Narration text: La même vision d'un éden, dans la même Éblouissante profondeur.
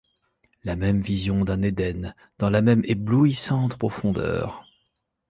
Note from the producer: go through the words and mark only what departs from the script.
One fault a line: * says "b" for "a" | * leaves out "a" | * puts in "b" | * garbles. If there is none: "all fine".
all fine